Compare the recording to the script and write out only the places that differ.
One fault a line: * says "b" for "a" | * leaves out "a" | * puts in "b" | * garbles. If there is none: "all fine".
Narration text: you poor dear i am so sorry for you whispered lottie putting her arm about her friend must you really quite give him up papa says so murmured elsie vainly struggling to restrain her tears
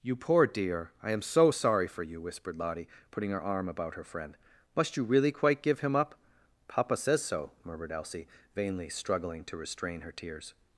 all fine